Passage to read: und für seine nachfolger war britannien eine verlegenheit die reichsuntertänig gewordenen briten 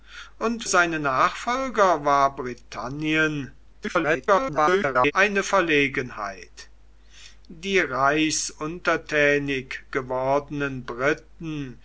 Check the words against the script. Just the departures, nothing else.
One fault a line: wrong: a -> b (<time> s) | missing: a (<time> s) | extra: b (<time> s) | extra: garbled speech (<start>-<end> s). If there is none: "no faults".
missing: für (0.6 s)
extra: garbled speech (3.7-5.1 s)